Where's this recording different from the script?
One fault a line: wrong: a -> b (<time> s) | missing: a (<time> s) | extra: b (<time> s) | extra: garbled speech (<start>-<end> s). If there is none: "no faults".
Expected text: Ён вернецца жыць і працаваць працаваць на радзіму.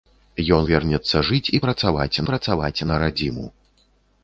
no faults